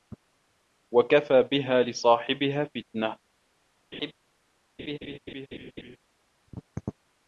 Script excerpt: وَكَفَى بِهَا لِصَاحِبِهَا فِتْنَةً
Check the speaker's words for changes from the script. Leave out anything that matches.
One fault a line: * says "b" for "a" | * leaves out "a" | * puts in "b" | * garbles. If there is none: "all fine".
all fine